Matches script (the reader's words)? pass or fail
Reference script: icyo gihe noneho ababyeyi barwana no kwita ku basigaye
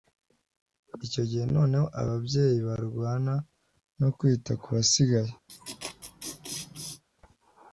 pass